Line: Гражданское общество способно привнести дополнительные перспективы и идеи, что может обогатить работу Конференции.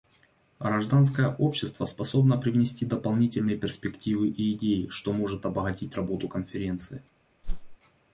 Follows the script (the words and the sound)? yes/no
no